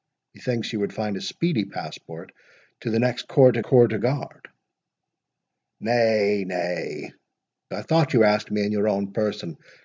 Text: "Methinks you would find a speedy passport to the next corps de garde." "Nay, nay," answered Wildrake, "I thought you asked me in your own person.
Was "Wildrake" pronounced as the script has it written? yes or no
no